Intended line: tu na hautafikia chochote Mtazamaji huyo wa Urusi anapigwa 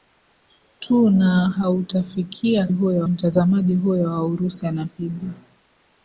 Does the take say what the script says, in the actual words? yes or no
no